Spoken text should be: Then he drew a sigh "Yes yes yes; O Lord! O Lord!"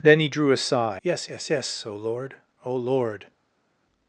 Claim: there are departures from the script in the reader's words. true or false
false